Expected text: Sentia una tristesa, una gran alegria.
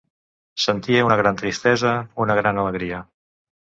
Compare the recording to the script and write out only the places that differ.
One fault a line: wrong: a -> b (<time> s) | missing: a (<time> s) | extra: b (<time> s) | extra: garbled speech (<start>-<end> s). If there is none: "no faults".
extra: gran (1.2 s)